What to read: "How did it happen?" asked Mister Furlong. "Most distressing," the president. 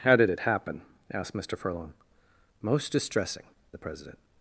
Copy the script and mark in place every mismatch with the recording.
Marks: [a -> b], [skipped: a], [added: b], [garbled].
"How did it happen?" asked Mister Furlong. "Most distressing," the president.